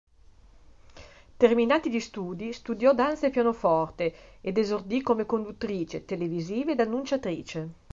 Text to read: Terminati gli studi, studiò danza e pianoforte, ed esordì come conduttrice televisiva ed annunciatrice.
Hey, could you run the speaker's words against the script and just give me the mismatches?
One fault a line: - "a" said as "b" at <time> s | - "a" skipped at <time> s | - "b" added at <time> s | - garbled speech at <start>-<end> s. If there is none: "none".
none